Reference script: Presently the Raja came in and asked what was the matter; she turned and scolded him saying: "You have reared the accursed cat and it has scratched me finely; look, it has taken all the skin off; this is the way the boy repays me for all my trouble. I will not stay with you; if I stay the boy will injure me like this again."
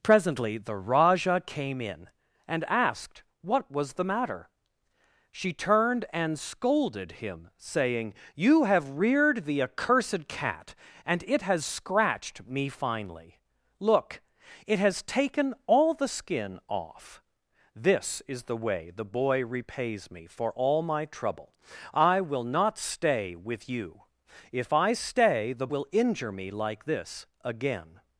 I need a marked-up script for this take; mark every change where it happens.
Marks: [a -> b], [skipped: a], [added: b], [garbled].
Presently the Raja came in and asked what was the matter; she turned and scolded him saying: "You have reared the accursed cat and it has scratched me finely; look, it has taken all the skin off; this is the way the boy repays me for all my trouble. I will not stay with you; if I stay the [skipped: boy] will injure me like this again."